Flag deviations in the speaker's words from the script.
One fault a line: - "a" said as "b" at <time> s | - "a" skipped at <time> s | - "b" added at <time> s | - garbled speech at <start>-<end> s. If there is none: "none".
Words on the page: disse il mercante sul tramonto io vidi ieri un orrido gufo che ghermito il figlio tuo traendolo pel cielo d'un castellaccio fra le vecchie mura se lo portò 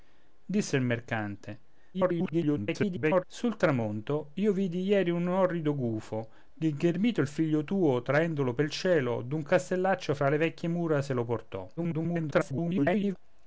- garbled speech at 1.9-3.2 s
- garbled speech at 11.8-13.2 s